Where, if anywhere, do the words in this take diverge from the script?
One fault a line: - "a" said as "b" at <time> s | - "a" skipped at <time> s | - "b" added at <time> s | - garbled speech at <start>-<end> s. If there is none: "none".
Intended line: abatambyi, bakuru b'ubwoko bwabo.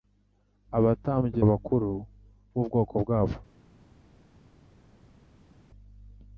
none